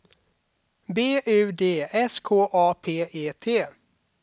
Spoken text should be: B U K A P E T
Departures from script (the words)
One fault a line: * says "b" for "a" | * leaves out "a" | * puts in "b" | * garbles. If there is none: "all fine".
* puts in "D S"